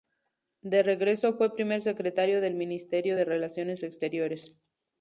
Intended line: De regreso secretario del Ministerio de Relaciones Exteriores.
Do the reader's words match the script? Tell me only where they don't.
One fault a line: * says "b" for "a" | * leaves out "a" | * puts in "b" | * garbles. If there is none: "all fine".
* puts in "fue primer"